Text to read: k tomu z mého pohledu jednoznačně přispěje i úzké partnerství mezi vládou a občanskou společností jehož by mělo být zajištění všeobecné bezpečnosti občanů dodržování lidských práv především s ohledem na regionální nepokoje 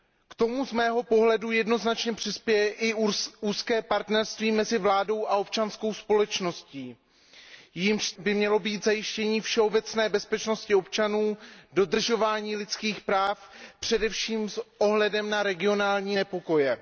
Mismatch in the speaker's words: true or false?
false